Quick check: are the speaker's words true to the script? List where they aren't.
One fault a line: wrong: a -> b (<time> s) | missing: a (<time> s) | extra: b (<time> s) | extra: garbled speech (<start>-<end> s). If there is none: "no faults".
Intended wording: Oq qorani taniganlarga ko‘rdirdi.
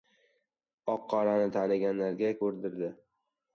no faults